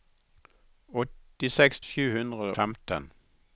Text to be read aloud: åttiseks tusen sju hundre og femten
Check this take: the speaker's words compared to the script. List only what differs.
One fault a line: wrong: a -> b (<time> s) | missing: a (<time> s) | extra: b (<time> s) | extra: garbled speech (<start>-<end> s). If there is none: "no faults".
missing: tusen (1.8 s)
missing: og (2.5 s)